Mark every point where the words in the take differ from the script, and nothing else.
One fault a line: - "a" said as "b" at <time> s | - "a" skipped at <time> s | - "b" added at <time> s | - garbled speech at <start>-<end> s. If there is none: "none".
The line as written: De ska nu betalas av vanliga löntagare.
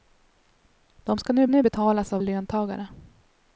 - "nu" added at 1.5 s
- "vanliga" skipped at 2.2 s